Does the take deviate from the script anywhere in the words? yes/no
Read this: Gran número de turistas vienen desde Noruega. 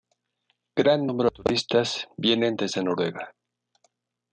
no